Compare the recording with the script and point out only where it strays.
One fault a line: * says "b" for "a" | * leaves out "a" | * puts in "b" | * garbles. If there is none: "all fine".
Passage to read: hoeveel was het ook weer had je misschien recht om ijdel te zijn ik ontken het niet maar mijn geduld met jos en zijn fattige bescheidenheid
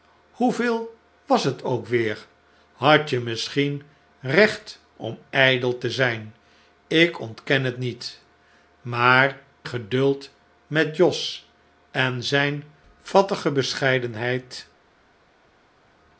* leaves out "mijn"